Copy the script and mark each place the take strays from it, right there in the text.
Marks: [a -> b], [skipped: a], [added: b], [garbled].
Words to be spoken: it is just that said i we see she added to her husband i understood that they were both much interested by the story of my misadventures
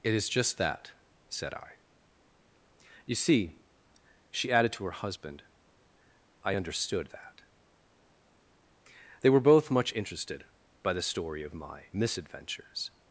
it is just that said i [we -> you] see she added to her husband i understood that they were both much interested by the story of my misadventures